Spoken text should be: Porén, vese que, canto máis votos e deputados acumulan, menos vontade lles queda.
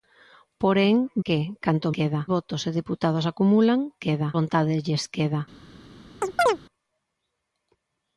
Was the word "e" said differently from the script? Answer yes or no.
no